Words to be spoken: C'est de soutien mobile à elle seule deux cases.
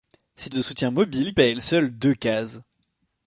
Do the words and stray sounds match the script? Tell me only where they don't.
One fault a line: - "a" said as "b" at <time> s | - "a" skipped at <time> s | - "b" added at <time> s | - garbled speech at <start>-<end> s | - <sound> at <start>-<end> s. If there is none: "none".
none